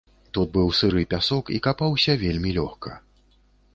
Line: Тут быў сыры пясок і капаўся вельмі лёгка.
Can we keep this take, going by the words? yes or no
yes